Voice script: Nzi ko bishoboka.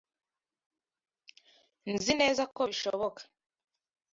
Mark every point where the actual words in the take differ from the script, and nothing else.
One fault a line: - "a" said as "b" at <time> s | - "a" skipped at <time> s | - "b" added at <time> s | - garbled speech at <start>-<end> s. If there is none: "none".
- "neza" added at 2.2 s